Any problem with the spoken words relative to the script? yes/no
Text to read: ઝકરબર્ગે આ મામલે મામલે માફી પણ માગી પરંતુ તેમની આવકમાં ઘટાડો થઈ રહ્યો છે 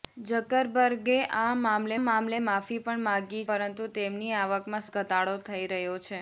no